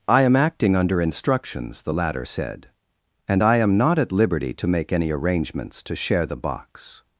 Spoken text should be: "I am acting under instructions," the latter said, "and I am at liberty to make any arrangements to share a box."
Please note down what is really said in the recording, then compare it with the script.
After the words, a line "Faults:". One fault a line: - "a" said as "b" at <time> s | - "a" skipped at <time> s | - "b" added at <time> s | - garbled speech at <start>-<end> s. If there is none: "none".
"I am acting under instructions," the latter said, "and I am not at liberty to make any arrangements to share the box."
Faults:
- "not" added at 3.8 s
- "a" said as "the" at 6.3 s